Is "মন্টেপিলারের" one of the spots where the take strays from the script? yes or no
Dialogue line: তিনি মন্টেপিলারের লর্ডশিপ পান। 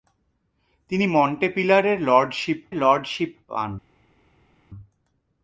no